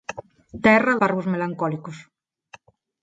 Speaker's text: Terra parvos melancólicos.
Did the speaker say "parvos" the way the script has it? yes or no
yes